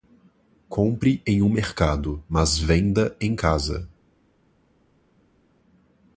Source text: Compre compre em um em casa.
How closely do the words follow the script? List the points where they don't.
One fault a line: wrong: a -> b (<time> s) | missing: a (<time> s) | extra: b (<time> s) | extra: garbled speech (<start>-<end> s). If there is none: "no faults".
missing: compre (1.2 s)
extra: mercado mas venda (1.5 s)